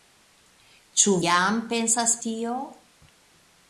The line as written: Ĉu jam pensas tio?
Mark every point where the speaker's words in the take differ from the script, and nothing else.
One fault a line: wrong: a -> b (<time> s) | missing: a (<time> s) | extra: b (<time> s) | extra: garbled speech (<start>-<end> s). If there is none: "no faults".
no faults